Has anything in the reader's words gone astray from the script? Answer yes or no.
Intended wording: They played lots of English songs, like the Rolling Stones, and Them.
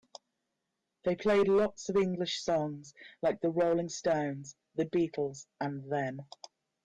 yes